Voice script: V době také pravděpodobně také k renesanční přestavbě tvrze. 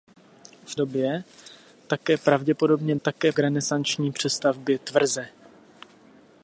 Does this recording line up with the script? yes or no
yes